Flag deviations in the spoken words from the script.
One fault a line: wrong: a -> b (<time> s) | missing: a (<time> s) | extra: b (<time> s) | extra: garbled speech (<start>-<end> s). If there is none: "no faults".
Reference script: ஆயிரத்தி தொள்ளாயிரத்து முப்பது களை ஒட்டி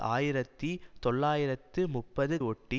missing: களை (2.4 s)